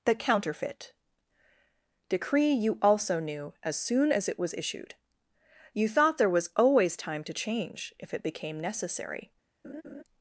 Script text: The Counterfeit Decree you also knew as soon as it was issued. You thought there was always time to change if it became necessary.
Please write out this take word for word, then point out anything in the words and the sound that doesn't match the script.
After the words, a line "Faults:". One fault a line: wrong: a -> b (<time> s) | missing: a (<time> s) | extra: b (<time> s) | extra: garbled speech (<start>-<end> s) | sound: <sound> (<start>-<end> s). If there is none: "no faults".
The Counterfeit Decree you also knew as soon as it was issued. You thought there was always time to change if it became necessary.
Faults:
sound: laugh (9.6-10.0 s)